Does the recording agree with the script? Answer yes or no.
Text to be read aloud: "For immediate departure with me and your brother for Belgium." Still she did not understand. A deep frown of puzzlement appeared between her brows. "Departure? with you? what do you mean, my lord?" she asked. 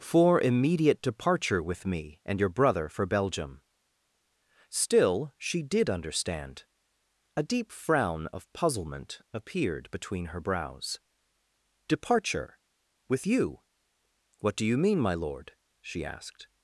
no